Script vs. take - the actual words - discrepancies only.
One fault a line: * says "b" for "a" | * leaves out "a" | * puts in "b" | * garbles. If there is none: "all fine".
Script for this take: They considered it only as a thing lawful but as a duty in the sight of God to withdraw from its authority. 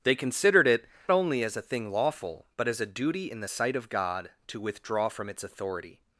all fine